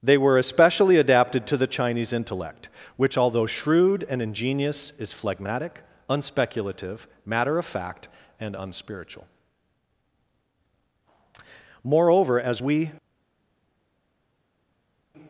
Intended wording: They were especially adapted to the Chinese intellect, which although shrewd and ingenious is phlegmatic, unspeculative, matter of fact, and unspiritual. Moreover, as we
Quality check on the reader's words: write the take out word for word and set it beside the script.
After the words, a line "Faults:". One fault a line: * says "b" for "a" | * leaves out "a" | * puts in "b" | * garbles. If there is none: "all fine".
They were especially adapted to the Chinese intellect, which although shrewd and ingenious is phlegmatic, unspeculative, matter of fact, and unspiritual. Moreover, as we
Faults:
all fine